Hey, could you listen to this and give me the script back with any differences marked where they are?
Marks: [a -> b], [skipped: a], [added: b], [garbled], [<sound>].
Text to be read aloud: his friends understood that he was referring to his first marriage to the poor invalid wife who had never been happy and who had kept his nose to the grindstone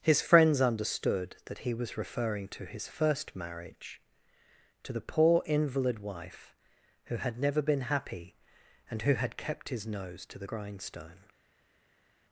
his friends understood that he was referring to his first marriage to the poor invalid wife who had never been happy and who had kept his nose to the grindstone